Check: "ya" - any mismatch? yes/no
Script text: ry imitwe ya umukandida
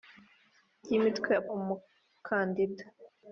no